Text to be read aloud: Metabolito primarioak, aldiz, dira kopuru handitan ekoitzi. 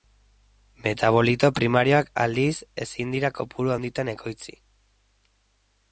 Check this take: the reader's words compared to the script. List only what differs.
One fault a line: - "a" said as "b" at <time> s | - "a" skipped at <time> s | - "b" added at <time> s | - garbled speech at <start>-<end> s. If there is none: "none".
- "ezin" added at 2.9 s